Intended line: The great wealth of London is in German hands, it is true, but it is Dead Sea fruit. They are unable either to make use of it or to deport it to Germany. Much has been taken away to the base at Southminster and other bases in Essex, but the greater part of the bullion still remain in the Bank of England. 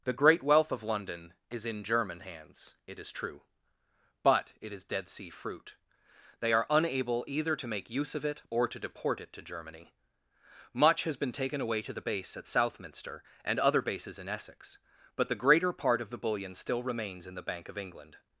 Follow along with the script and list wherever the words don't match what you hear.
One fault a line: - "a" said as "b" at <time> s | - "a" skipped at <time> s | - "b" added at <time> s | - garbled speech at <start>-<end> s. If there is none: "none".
- "remain" said as "remains" at 16.8 s